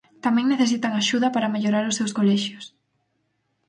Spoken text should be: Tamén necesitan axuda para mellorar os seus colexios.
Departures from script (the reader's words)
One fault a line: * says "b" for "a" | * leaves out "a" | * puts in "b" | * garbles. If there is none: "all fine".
all fine